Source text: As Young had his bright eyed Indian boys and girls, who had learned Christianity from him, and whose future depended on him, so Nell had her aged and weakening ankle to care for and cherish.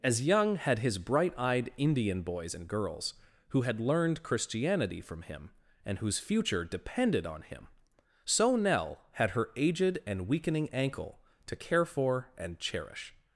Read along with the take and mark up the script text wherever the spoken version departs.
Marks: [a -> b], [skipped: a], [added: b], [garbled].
As Young had his bright eyed Indian boys and girls, who had learned Christianity from him, and whose future depended on him, so Nell had her aged and weakening ankle to care for and cherish.